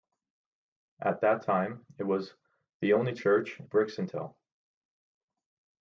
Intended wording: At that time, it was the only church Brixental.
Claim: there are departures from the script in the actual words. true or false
false